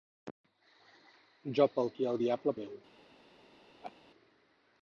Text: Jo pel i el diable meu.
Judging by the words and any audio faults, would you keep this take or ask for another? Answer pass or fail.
fail